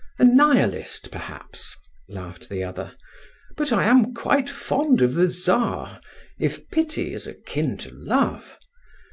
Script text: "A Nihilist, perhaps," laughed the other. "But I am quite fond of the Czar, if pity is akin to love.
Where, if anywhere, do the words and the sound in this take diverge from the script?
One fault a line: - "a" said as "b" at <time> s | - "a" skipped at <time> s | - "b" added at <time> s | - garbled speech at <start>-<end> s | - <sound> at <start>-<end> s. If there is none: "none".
none